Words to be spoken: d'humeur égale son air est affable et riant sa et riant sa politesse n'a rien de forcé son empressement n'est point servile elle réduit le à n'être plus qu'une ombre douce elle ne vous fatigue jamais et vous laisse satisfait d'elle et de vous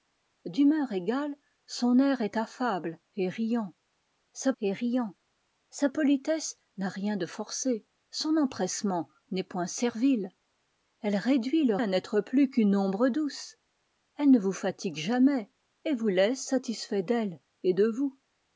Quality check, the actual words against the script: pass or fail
pass